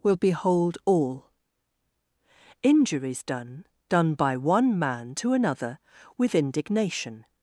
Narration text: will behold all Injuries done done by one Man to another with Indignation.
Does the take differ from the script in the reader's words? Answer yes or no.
no